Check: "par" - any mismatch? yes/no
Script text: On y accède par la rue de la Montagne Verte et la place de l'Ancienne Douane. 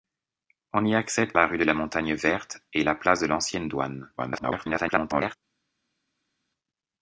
yes